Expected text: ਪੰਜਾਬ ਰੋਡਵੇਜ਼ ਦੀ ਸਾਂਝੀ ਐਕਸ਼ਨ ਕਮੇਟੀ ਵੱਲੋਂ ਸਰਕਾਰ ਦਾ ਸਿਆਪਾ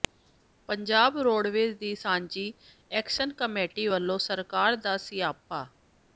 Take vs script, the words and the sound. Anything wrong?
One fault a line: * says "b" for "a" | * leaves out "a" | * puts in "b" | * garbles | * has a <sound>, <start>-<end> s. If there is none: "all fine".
all fine